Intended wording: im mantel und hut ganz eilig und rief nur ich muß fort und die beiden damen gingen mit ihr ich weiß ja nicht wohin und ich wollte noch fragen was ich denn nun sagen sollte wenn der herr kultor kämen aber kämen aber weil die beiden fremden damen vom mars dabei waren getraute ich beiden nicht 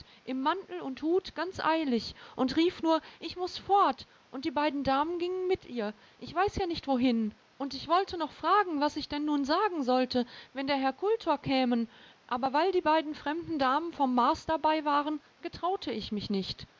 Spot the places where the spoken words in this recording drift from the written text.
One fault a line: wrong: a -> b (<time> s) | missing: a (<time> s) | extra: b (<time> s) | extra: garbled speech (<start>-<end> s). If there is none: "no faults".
missing: kämen aber (12.5 s)
wrong: beiden -> mich (16.1 s)